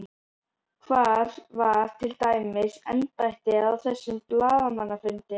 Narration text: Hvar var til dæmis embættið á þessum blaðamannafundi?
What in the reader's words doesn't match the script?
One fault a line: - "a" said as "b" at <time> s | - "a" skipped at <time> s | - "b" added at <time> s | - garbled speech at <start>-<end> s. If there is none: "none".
none